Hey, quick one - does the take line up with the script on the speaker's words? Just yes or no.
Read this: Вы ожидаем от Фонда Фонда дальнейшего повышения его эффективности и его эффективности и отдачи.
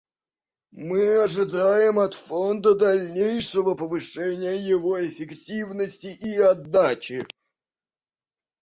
no